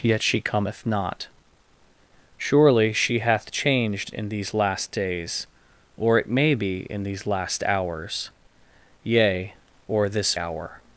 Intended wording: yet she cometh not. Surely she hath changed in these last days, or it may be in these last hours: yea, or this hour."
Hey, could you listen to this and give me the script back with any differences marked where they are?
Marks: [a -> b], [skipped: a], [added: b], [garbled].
yet she cometh not. Surely she hath changed in these last days, or it may be in these last hours: yea, or this hour."